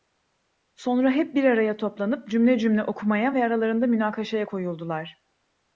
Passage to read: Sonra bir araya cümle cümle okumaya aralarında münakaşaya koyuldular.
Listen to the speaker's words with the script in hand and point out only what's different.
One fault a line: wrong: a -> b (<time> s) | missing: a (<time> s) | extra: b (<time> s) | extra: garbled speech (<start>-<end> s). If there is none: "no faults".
extra: hep (1.1 s)
extra: toplanıp (1.8 s)
extra: ve (3.3 s)